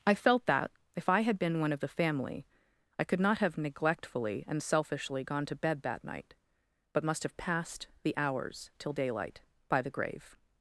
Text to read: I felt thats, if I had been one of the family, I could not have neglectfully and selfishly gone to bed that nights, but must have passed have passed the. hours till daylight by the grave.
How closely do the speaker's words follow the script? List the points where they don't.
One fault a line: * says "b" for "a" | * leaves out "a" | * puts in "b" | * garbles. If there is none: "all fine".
* says "that" for "thats"
* says "night" for "nights"
* leaves out "have passed"